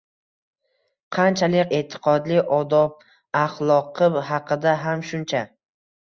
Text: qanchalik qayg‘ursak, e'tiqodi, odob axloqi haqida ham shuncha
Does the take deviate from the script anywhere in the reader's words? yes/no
yes